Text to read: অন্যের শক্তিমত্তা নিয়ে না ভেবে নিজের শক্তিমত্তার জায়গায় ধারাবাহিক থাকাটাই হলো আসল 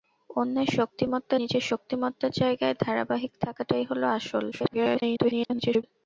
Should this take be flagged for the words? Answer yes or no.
yes